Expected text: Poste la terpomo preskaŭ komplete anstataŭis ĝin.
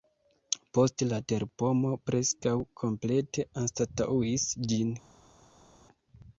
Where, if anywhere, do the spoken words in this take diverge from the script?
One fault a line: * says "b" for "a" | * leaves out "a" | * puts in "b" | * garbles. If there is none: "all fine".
all fine